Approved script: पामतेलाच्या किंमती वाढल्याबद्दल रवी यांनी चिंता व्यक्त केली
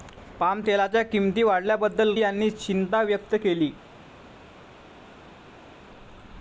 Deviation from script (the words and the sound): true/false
true